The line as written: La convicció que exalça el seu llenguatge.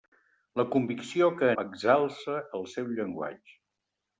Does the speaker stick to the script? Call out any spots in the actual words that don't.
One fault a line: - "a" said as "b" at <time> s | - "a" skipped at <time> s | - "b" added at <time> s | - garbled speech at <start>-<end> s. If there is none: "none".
none